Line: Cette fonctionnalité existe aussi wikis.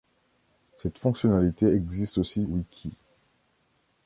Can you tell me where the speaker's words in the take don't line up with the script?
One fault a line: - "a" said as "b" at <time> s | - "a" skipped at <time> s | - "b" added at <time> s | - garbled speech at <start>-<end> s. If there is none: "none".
none